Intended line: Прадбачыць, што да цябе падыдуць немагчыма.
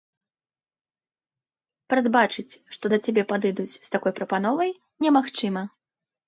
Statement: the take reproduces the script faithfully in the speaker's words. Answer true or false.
false